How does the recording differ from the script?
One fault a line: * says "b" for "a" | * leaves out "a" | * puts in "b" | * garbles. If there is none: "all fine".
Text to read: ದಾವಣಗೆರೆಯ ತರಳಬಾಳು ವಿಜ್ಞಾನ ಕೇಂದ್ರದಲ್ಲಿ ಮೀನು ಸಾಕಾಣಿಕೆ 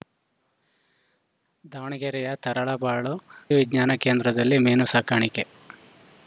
all fine